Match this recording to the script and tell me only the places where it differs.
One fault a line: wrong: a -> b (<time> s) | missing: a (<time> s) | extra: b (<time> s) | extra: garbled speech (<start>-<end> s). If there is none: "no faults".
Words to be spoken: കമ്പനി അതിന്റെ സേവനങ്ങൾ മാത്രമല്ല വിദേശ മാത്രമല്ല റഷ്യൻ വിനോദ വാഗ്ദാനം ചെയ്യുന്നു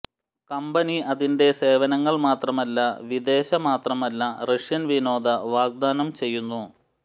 no faults